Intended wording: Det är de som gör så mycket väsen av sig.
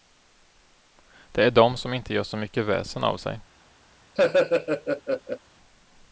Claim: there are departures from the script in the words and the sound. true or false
true